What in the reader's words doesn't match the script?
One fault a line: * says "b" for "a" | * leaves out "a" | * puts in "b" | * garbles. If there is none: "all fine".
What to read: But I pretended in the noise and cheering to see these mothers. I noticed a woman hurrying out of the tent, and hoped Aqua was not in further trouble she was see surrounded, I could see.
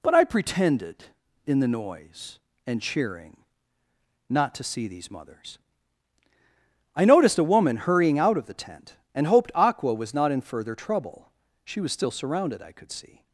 * puts in "not"
* says "still" for "see"